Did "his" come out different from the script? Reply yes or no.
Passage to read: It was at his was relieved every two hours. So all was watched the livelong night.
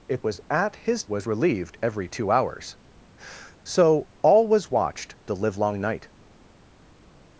no